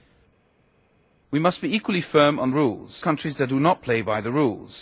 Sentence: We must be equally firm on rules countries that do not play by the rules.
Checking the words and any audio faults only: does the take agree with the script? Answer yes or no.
yes